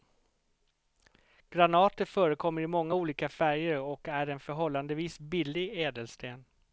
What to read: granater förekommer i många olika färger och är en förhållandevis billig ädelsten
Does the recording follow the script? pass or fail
pass